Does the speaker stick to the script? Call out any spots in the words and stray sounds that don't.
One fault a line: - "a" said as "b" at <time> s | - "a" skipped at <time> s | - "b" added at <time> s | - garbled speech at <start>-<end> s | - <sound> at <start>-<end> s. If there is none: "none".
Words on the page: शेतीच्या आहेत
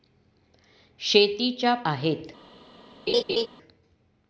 - laugh at 3.1-3.5 s